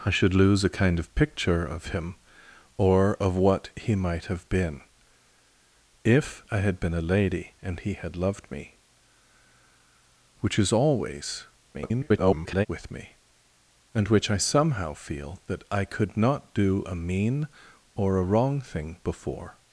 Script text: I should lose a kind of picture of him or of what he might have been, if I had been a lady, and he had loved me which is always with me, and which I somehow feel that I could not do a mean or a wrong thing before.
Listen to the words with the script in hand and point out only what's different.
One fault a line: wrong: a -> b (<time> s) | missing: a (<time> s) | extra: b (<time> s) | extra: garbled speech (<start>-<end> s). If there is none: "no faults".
extra: garbled speech (11.7-12.7 s)